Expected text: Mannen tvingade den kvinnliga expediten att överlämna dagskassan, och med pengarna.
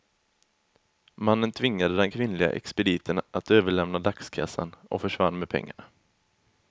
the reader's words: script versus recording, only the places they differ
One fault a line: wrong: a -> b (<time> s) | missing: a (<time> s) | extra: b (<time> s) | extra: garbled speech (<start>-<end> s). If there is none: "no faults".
extra: försvann (5.0 s)